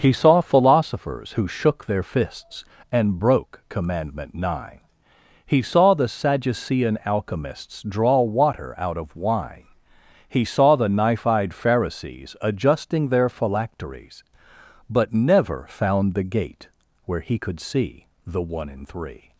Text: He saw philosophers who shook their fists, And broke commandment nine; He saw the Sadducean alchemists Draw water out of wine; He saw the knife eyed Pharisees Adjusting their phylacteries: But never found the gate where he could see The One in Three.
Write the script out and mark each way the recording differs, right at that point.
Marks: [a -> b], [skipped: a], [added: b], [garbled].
He saw philosophers who shook their fists, And broke commandment nine; He saw the Sadducean alchemists Draw water out of wine; He saw the knife eyed Pharisees Adjusting their phylacteries: But never found the gate where he could see The One in Three.